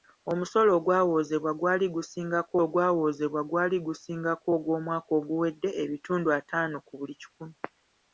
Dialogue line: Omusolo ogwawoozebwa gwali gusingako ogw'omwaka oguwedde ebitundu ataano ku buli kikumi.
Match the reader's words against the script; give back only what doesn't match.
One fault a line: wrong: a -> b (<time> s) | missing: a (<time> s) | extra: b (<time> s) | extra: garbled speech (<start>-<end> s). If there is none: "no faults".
extra: ogwawoozebwa gwali gusingako (2.6 s)